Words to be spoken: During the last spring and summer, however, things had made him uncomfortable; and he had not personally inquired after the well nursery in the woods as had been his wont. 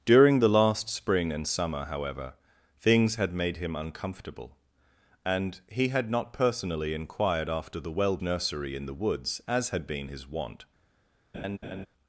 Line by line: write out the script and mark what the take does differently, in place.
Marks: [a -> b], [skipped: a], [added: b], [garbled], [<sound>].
During the last spring and summer, however, things had made him uncomfortable; and he had not personally inquired after the well nursery in the woods as had been his wont. [laugh]